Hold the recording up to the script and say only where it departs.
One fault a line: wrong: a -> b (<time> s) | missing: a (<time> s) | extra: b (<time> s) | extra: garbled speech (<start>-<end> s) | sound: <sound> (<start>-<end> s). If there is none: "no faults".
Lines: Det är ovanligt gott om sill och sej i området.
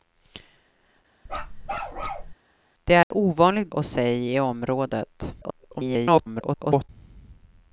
sound: bark (1.3-2.3 s)
sound: dropout (3.0-3.1 s)
missing: gott om sill (3.7 s)
extra: garbled speech (5.4-6.9 s)